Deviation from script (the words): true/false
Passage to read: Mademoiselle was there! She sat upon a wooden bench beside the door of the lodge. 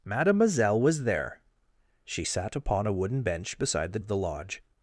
true